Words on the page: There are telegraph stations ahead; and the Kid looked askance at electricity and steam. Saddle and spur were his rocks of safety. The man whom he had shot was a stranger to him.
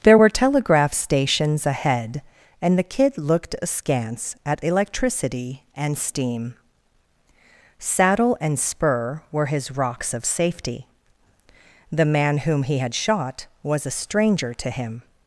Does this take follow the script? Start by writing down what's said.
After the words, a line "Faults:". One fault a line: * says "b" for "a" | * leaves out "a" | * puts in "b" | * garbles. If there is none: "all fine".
There were telegraph stations ahead; and the Kid looked askance at electricity and steam. Saddle and spur were his rocks of safety. The man whom he had shot was a stranger to him.
Faults:
* says "were" for "are"